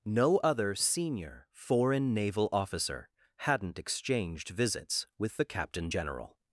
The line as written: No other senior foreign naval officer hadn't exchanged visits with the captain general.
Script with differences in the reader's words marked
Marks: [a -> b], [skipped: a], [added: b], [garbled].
No other senior foreign naval officer hadn't exchanged visits with the captain general.